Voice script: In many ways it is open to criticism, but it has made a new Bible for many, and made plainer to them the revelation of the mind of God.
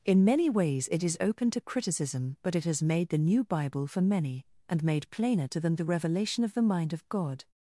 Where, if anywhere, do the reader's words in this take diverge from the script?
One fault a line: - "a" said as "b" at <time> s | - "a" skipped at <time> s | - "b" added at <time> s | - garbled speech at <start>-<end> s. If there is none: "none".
- "a" said as "the" at 3.1 s